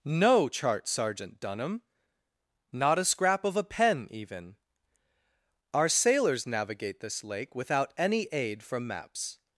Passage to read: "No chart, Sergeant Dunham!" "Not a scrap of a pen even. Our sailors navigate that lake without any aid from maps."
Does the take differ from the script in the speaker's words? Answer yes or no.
yes